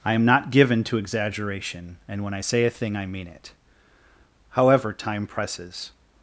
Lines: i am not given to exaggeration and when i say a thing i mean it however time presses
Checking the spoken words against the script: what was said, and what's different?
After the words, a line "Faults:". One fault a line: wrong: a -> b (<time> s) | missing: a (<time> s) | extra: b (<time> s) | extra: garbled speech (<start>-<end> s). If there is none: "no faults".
i am not given to exaggeration and when i say a thing i mean it however time presses
Faults:
no faults